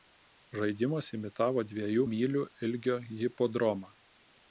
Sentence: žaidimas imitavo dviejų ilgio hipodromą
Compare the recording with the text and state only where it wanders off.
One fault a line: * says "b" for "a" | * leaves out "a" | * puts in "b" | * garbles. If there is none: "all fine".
* puts in "mylių"